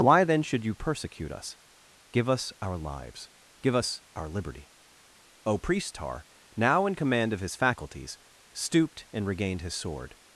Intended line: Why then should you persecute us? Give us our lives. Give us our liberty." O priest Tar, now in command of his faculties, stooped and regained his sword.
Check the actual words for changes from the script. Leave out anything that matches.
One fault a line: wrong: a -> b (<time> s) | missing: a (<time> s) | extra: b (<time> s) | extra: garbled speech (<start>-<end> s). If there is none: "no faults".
no faults